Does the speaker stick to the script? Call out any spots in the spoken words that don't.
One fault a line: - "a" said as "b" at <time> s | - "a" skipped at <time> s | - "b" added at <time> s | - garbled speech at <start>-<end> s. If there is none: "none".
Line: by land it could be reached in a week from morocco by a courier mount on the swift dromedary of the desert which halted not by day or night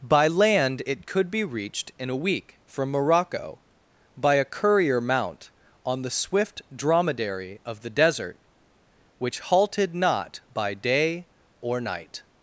none